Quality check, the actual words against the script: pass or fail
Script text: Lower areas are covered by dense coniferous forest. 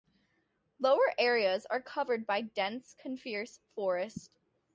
pass